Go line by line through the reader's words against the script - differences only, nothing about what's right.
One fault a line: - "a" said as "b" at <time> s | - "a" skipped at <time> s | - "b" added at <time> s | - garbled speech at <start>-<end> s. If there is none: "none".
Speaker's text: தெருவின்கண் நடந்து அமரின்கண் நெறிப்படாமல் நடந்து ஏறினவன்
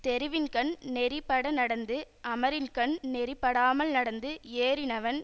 - "நெறிப்பட" added at 0.9 s